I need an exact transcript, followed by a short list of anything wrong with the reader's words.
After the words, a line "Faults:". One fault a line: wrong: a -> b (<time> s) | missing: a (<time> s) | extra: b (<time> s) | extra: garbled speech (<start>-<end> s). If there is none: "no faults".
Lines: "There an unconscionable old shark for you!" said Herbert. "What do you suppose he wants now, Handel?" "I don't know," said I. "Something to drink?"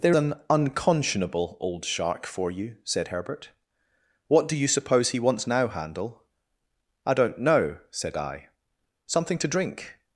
"There an unconscionable old shark for you!" said Herbert. "What do you suppose he wants now, Handel?" "I don't know," said I. "Something to drink?"
Faults:
no faults